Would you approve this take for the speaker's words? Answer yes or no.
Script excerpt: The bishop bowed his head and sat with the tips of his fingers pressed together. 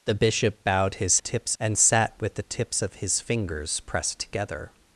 no